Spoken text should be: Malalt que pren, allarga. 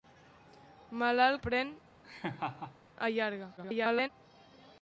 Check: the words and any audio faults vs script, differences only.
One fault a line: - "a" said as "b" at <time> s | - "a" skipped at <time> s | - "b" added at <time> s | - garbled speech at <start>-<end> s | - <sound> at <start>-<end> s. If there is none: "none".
- "que" skipped at 1.4 s
- laugh at 2.0-2.8 s
- garbled speech at 3.6-4.1 s